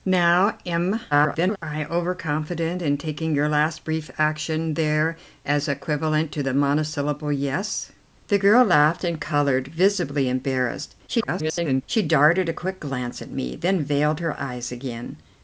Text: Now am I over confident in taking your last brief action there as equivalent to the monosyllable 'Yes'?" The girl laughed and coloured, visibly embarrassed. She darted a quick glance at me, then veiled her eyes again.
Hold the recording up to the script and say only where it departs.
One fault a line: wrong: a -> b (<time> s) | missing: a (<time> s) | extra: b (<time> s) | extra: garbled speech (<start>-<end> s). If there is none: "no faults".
extra: garbled speech (1.1-1.6 s)
extra: garbled speech (11.1-11.8 s)